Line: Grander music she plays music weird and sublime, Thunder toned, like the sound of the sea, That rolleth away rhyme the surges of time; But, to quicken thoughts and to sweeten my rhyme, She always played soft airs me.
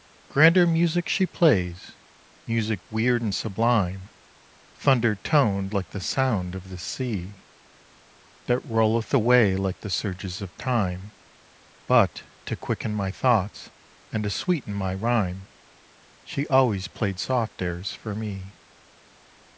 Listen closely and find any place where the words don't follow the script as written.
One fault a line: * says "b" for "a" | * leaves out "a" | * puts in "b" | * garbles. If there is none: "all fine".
* says "like" for "rhyme"
* puts in "my"
* puts in "for"